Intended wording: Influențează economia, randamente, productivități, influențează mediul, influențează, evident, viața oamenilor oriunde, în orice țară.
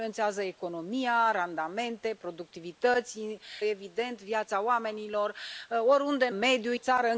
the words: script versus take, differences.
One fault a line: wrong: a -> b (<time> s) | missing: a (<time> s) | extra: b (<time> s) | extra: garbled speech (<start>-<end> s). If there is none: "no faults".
missing: influențează mediul influențează (3.2 s)
wrong: orice -> mediul (6.3 s)